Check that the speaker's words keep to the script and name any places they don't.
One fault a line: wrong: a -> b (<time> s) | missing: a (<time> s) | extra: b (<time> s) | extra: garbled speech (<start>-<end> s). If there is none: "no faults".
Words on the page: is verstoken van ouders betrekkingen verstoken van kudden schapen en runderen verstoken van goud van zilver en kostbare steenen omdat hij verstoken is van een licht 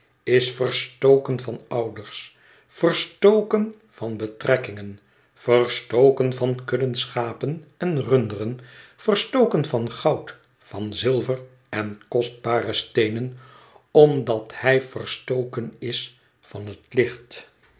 extra: verstoken van (2.7 s)
wrong: een -> het (16.7 s)